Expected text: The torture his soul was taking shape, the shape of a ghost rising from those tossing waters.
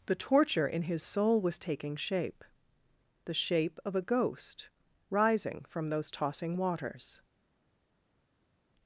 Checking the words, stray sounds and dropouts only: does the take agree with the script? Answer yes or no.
no